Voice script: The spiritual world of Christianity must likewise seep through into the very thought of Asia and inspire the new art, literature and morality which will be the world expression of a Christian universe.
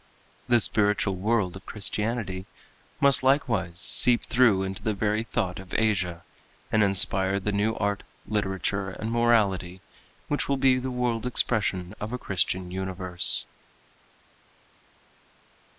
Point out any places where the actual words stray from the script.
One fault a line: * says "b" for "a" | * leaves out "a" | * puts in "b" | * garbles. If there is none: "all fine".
all fine